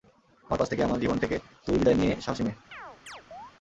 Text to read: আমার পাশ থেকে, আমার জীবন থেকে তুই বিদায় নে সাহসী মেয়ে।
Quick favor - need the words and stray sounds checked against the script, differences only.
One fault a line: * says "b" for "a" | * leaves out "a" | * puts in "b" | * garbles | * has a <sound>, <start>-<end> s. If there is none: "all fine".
* has a chirp, 2.7-3.5 s